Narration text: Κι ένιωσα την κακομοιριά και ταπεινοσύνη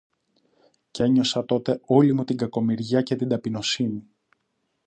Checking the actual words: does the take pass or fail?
fail